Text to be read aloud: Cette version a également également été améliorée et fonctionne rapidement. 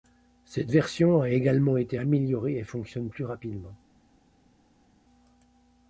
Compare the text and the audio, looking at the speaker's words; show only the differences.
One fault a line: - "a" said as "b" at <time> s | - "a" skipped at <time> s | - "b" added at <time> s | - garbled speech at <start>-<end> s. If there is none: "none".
- "également" skipped at 1.8 s
- "plus" added at 3.1 s